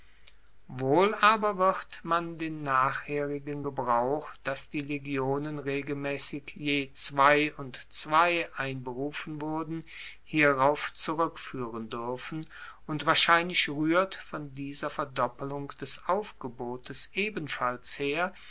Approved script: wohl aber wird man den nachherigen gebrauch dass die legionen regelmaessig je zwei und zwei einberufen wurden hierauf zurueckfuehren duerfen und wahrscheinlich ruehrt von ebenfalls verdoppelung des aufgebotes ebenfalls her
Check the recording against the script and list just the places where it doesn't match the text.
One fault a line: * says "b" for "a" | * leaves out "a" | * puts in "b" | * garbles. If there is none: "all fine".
* says "dieser" for "ebenfalls"